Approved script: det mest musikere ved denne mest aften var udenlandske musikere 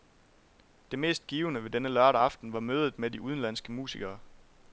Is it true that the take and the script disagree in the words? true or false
true